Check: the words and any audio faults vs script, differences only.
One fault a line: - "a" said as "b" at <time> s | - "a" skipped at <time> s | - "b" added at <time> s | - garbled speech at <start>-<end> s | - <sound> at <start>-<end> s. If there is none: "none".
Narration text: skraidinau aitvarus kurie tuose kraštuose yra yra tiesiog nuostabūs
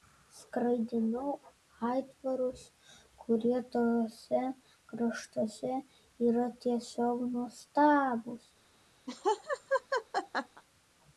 - "yra" skipped at 6.5 s
- laugh at 9.1-10.6 s